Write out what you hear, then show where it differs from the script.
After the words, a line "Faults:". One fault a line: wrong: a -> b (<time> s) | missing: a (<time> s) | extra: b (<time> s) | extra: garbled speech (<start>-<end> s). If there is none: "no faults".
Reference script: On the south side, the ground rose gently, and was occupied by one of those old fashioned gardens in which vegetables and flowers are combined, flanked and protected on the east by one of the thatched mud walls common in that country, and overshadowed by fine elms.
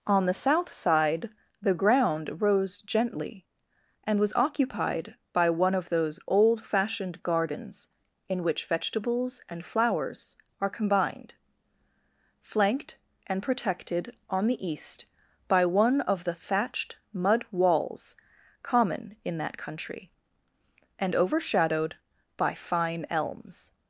On the south side, the ground rose gently, and was occupied by one of those old fashioned gardens in which vegetables and flowers are combined, flanked and protected on the east by one of the thatched mud walls common in that country, and overshadowed by fine elms.
Faults:
no faults